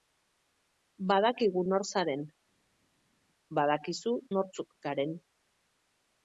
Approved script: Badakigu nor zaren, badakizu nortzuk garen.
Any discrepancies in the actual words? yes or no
no